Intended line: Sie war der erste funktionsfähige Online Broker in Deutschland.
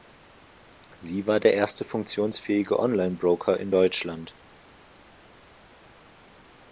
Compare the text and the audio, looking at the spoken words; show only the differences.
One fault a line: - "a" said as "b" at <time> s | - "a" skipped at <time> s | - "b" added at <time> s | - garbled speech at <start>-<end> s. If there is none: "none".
none